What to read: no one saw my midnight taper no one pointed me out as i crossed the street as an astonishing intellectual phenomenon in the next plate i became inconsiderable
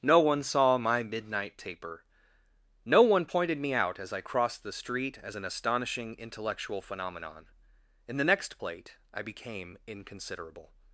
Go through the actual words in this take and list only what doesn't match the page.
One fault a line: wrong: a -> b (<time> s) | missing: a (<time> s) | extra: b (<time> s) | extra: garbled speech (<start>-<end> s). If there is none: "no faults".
no faults